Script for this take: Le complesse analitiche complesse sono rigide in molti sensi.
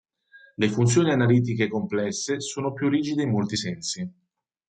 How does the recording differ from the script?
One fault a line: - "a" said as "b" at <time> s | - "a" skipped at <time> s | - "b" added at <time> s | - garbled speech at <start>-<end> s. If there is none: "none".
- "complesse" said as "funzioni" at 0.7 s
- "più" added at 2.7 s